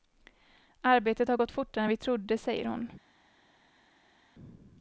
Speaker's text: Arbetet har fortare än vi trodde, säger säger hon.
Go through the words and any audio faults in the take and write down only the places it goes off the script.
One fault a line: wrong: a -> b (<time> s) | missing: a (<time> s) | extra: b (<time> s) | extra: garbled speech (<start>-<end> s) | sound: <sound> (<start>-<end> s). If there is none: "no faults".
extra: gått (1.3 s)
missing: säger (2.7 s)